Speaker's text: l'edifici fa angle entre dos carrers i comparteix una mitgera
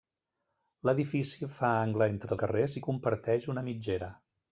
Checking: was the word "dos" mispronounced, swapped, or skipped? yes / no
yes